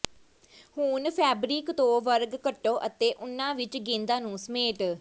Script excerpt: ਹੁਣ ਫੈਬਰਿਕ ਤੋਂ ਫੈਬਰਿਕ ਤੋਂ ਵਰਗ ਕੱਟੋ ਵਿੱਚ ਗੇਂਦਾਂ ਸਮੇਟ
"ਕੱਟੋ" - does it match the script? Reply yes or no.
no